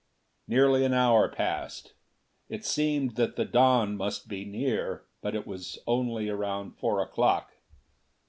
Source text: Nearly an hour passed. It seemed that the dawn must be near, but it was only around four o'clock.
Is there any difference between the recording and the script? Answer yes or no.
no